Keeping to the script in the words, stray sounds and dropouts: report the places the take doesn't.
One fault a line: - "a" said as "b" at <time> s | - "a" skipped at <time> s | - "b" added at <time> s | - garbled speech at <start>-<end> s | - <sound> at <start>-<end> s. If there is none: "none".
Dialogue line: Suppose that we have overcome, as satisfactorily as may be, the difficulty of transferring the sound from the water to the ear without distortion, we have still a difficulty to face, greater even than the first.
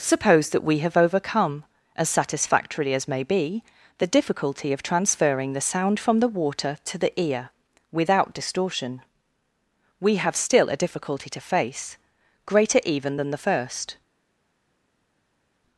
none